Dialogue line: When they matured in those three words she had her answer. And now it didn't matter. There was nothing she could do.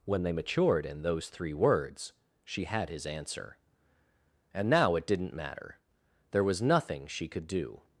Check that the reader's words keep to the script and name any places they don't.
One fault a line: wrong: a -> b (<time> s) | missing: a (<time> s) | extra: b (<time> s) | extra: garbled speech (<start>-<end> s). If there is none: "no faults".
wrong: her -> his (2.9 s)